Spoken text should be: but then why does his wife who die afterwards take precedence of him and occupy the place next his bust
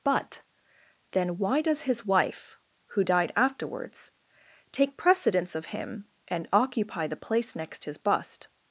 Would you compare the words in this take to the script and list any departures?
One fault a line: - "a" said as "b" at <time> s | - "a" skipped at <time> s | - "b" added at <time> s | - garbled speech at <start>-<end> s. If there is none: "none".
- "die" said as "died" at 3.0 s